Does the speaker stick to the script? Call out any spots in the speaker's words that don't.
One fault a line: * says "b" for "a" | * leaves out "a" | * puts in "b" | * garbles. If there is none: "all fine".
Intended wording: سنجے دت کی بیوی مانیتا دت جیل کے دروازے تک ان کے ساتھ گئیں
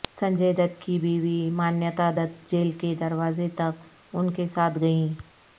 all fine